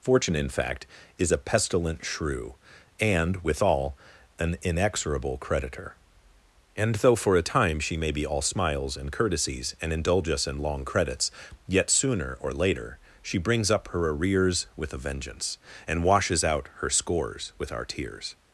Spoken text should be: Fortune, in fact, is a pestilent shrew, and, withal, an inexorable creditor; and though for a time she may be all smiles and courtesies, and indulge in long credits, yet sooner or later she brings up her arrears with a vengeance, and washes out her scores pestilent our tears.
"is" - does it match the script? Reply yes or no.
yes